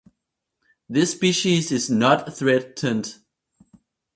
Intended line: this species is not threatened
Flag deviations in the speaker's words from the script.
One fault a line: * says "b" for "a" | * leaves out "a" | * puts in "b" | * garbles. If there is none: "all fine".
all fine